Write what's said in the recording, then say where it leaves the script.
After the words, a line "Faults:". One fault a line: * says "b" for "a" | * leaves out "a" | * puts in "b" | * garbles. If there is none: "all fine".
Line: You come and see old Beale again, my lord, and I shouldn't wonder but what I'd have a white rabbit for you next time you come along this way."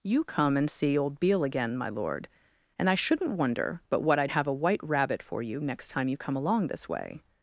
You come and see old Beale again, my lord, and I shouldn't wonder but what I'd have a white rabbit for you next time you come along this way."
Faults:
all fine